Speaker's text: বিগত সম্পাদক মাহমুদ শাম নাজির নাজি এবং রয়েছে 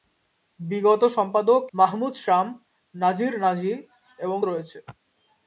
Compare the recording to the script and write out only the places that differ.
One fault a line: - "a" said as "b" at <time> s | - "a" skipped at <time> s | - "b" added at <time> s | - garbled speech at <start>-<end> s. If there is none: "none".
none